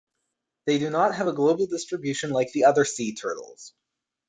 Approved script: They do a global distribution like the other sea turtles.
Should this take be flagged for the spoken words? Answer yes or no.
yes